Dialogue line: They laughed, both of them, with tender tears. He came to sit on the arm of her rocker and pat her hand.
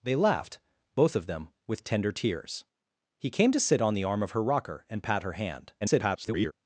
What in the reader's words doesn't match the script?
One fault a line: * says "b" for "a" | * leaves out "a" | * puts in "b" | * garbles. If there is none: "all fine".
* garbles